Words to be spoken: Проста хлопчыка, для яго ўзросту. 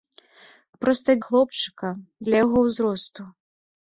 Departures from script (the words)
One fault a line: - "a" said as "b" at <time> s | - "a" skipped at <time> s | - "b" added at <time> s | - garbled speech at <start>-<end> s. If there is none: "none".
none